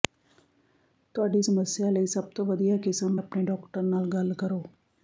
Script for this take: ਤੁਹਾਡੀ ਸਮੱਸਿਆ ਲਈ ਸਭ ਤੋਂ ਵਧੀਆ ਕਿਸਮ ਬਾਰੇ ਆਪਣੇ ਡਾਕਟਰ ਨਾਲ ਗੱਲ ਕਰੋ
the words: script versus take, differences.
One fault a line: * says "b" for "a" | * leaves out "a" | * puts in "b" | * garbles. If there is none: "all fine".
* leaves out "ਬਾਰੇ"